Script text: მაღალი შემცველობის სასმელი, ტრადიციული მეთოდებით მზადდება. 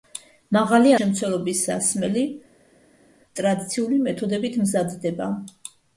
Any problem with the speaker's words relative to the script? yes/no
no